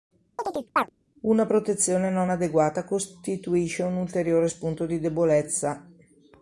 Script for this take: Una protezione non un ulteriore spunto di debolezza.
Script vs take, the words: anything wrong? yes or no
yes